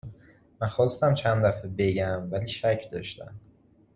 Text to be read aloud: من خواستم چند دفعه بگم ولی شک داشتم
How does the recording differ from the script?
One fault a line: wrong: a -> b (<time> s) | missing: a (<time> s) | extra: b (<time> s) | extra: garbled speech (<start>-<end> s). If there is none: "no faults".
no faults